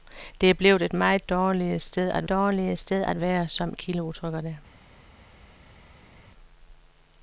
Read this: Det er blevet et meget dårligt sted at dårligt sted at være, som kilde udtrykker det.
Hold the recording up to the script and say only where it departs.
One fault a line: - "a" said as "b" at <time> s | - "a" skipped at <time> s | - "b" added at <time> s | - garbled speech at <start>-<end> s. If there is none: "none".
none